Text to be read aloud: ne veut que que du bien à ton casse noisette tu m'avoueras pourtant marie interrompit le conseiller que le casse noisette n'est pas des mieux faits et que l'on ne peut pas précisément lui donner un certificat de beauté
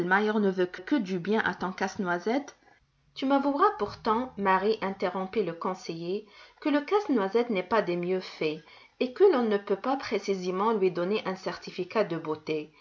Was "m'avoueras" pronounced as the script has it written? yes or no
yes